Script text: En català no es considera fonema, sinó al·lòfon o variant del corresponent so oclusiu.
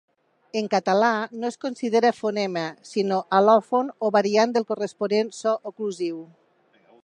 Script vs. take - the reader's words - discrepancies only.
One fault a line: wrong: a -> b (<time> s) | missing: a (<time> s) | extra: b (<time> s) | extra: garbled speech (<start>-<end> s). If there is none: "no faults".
no faults